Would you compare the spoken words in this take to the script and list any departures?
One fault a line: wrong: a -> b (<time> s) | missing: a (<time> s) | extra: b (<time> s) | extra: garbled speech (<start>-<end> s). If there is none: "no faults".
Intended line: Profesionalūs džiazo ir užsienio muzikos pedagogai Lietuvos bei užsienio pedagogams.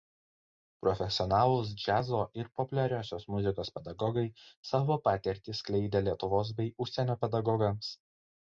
wrong: užsienio -> populiariosios (2.6 s)
extra: savo patirtį skleidė (4.7 s)